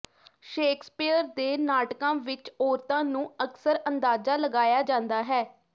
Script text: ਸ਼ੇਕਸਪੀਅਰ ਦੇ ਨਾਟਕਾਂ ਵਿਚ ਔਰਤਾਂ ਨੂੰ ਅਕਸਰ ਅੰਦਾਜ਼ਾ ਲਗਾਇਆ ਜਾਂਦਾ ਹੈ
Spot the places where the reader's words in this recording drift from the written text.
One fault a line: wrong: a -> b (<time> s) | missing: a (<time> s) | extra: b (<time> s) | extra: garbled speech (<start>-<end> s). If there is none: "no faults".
no faults